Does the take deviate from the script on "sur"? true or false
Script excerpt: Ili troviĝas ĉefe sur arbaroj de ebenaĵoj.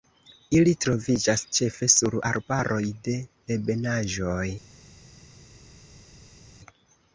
false